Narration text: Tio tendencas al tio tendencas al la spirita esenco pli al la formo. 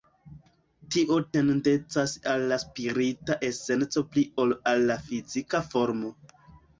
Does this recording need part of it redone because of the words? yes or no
yes